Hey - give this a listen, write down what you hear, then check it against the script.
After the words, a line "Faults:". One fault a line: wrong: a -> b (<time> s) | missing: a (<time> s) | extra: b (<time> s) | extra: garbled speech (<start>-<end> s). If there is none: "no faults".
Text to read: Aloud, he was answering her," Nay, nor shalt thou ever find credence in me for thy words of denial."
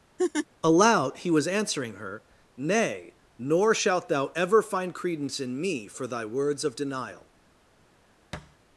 Aloud, he was answering her," Nay, nor shalt thou ever find credence in me for thy words of denial."
Faults:
no faults